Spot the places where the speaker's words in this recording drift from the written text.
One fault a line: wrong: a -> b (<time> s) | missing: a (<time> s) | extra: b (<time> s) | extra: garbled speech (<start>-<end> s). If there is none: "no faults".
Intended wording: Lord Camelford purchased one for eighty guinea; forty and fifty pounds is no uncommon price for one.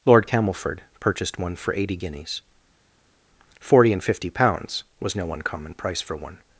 wrong: guinea -> guineas (2.0 s)
wrong: is -> was (5.0 s)